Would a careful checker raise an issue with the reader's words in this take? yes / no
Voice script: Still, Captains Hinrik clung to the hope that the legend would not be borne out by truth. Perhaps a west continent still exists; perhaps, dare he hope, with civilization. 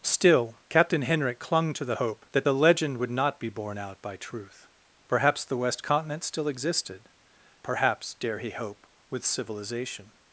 yes